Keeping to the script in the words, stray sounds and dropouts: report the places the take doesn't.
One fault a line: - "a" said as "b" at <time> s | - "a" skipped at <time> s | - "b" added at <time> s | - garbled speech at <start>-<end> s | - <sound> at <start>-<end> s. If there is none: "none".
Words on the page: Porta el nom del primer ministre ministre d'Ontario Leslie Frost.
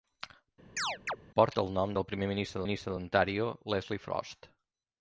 - chirp at 0.8-1.2 s